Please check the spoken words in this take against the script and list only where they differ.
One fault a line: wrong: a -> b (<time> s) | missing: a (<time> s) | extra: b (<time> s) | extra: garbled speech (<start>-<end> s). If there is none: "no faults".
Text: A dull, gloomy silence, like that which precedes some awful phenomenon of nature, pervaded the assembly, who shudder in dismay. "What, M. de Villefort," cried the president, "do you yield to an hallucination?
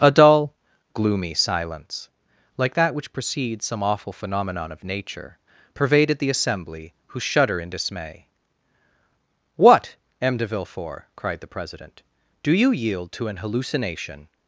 no faults